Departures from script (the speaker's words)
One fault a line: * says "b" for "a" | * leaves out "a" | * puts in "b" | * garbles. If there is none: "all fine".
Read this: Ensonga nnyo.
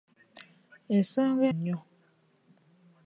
all fine